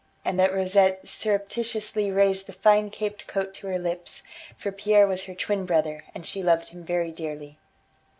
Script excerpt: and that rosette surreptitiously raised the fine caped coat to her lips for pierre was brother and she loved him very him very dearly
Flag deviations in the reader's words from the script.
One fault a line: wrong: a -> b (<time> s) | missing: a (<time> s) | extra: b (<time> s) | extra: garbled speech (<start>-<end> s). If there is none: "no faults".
extra: her twin (5.2 s)
missing: him very (7.1 s)